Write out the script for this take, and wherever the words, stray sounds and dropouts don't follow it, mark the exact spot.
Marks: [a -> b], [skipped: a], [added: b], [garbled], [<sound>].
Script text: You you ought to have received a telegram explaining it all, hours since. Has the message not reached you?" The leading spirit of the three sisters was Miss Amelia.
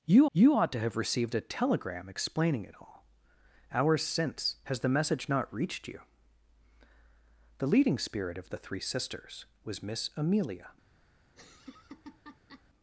You you ought to have received a telegram explaining it all, hours since. Has the message not reached you?" The leading spirit of the three sisters was Miss Amelia. [laugh]